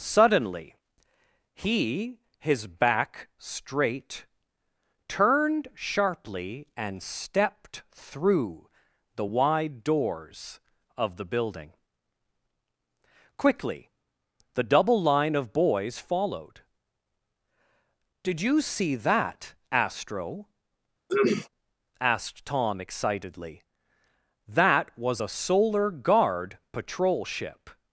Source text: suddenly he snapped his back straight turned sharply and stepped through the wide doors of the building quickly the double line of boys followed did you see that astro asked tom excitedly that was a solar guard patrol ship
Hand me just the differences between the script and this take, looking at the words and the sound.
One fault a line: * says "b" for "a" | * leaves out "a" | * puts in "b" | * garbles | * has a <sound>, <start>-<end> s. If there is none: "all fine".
* leaves out "snapped"
* has a throat clearing, 21.1-21.5 s